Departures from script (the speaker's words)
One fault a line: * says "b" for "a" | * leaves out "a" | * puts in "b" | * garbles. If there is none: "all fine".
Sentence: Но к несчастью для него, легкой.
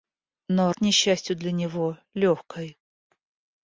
all fine